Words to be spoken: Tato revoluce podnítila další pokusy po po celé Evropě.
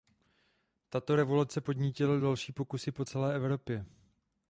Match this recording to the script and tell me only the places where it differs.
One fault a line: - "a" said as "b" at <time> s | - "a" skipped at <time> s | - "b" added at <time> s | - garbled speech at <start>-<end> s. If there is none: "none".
- "po" skipped at 3.0 s